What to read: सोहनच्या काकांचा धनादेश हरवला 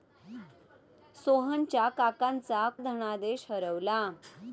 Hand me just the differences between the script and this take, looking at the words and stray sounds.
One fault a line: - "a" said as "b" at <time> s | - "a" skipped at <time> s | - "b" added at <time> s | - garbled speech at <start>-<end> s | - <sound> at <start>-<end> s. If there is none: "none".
none